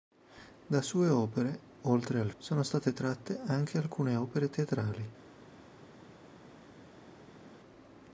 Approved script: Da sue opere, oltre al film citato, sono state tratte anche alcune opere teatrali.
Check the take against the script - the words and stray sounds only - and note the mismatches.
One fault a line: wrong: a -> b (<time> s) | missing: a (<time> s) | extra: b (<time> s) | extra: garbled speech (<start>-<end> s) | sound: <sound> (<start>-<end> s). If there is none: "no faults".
missing: film citato (2.3 s)